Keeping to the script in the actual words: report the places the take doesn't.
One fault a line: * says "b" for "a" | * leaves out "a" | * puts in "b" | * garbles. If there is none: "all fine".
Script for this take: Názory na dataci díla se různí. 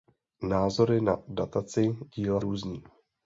* leaves out "se"